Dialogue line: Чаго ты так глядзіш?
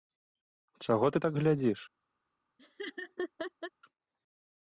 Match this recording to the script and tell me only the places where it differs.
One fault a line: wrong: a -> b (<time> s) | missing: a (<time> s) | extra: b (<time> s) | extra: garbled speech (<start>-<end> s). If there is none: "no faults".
no faults